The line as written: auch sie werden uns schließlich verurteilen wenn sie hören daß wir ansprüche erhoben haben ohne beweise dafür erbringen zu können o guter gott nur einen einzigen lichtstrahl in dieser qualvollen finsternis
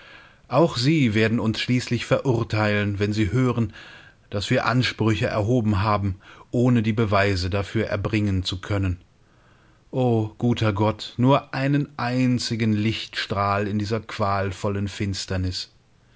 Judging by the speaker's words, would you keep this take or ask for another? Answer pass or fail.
fail